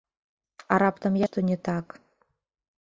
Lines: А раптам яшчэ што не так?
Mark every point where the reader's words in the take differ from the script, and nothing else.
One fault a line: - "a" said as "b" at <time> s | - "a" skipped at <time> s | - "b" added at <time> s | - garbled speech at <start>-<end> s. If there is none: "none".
- "яшчэ" skipped at 1.2 s